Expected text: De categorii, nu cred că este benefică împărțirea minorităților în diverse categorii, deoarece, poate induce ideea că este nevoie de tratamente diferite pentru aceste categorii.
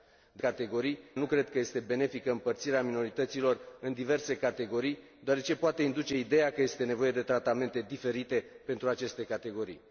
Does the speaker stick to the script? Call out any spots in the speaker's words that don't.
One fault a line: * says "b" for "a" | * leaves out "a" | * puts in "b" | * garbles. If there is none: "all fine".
all fine